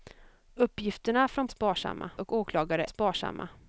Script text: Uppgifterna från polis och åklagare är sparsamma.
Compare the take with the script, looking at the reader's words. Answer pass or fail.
fail